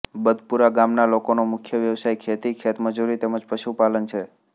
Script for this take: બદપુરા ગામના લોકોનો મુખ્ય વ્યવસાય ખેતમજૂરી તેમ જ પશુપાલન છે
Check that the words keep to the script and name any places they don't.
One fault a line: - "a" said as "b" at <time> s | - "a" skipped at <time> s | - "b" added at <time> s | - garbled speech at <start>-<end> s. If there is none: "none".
- "ખેતી" added at 2.2 s